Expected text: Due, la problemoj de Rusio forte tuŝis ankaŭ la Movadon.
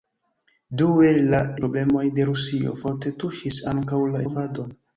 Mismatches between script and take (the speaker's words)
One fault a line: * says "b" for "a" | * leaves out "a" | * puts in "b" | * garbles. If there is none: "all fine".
all fine